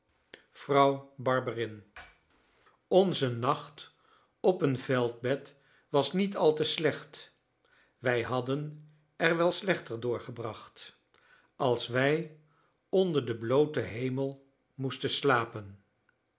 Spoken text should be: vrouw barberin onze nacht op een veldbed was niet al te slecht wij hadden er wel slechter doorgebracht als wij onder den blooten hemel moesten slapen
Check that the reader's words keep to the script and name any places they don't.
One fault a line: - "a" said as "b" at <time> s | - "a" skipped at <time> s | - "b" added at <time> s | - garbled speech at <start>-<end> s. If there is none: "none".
none